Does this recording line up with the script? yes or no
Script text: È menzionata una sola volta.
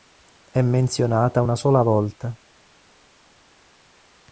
yes